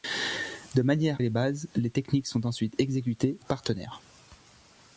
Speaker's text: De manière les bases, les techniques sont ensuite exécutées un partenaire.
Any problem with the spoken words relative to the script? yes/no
no